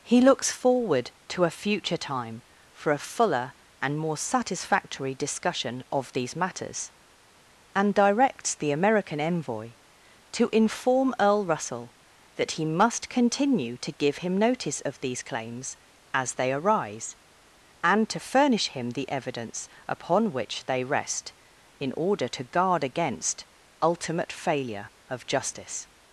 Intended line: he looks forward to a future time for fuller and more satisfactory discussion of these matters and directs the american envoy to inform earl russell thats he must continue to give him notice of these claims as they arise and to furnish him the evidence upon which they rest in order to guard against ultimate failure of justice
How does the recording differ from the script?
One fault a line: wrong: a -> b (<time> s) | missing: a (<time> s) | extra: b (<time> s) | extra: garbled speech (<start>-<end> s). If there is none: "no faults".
extra: a (2.9 s)
wrong: thats -> that (12.4 s)